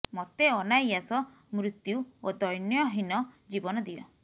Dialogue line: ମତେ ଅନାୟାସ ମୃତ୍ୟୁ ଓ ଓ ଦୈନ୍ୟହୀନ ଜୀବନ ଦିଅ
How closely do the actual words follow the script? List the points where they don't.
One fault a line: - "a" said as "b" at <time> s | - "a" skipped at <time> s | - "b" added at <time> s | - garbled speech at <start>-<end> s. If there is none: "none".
- "ଓ" skipped at 2.4 s